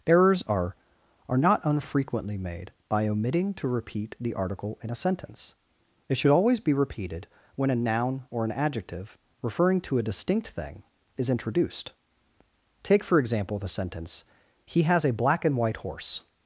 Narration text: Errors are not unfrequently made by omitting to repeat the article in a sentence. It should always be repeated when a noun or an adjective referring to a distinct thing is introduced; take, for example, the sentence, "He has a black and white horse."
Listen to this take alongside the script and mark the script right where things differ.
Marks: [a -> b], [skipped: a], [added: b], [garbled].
Errors are [added: are] not unfrequently made by omitting to repeat the article in a sentence. It should always be repeated when a noun or an adjective referring to a distinct thing is introduced; take, for example, the sentence, "He has a black and white horse."